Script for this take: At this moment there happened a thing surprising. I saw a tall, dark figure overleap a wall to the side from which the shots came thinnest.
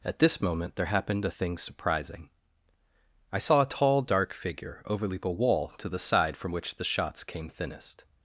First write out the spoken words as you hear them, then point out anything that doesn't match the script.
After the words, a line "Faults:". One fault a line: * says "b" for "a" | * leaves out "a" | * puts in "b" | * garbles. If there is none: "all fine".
At this moment there happened a thing surprising. I saw a tall, dark figure overleap a wall to the side from which the shots came thinnest.
Faults:
all fine